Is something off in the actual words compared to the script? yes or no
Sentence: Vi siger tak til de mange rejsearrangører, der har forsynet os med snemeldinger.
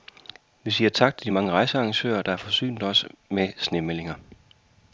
no